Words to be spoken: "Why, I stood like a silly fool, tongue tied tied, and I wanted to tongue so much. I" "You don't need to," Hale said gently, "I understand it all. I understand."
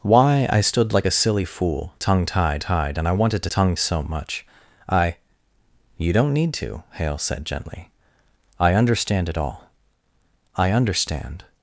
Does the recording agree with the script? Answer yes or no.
yes